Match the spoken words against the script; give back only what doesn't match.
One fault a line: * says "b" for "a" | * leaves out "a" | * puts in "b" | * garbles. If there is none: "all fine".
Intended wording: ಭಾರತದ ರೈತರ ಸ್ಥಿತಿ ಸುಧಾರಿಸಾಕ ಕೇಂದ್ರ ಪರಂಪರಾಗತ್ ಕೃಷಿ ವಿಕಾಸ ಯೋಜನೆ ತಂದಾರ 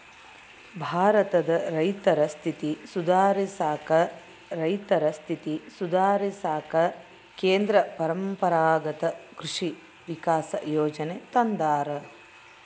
* puts in "ರೈತರ ಸ್ಥಿತಿ ಸುಧಾರಿಸಾಕ"